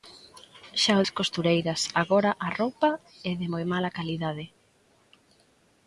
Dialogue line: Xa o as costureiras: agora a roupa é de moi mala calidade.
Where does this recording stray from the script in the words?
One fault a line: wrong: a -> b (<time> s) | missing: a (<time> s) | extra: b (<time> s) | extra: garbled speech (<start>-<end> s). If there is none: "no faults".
no faults